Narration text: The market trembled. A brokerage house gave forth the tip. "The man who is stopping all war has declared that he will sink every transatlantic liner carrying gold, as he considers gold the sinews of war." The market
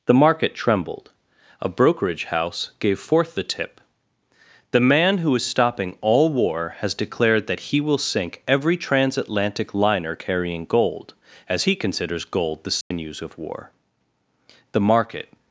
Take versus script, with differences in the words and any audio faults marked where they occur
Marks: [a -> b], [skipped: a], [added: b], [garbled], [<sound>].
The market trembled. A brokerage house gave forth the tip. "The man who is stopping all war has declared that he will sink every transatlantic liner carrying gold, as he considers gold the sinews [dropout] of war." The market